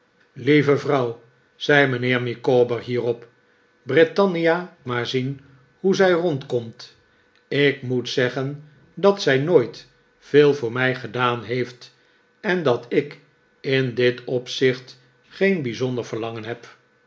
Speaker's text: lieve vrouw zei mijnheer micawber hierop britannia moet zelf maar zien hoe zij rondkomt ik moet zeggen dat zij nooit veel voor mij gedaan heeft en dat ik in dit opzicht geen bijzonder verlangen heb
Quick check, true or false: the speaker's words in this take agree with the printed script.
false